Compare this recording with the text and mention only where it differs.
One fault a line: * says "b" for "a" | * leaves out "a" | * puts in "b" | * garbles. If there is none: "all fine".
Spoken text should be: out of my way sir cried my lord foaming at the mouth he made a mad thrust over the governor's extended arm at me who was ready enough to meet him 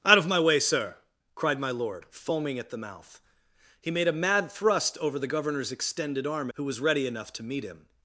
* leaves out "at me"